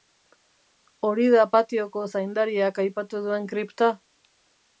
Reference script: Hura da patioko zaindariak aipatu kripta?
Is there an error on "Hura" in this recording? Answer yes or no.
yes